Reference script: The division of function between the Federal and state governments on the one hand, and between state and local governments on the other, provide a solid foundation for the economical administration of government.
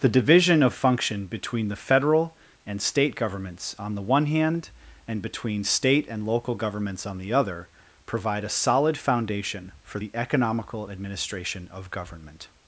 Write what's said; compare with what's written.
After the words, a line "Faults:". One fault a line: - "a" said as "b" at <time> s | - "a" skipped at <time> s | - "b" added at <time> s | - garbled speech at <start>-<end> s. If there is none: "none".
The division of function between the Federal and state governments on the one hand, and between state and local governments on the other, provide a solid foundation for the economical administration of government.
Faults:
none